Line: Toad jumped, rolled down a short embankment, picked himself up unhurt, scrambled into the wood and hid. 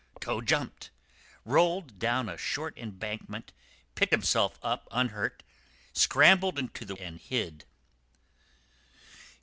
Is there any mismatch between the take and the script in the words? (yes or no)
yes